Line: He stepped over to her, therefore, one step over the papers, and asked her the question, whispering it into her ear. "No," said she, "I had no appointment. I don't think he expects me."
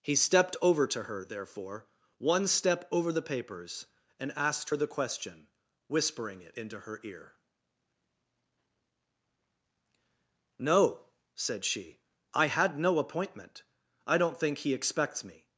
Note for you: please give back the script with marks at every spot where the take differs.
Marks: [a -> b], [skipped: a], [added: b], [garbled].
He stepped over to her, therefore, one step over the papers, and asked her the question, whispering it into her ear. "No," said she, "I had no appointment. I don't think he expects me."